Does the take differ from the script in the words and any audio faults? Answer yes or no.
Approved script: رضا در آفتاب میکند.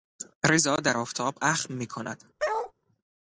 yes